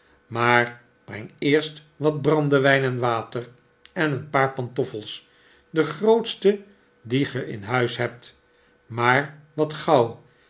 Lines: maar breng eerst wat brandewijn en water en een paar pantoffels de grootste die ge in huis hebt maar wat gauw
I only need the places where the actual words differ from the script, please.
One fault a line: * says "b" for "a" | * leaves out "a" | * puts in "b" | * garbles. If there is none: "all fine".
all fine